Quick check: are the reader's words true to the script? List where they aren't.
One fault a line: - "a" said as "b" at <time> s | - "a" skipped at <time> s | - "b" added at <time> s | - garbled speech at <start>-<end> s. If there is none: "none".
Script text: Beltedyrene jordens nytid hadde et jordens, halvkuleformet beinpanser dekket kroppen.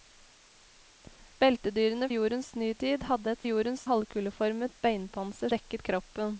none